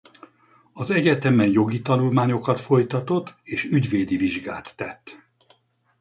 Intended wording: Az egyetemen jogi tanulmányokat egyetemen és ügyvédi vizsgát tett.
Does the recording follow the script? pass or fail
fail